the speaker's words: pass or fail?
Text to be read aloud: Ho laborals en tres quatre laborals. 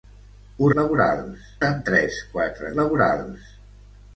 pass